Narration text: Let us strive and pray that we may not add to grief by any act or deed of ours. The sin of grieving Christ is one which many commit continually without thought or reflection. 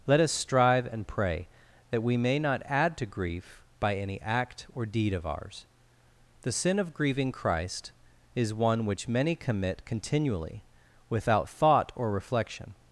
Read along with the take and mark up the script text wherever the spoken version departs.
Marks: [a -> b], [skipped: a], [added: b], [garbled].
Let us strive and pray that we may not add to grief by any act or deed of ours. The sin of grieving Christ is one which many commit continually without thought or reflection.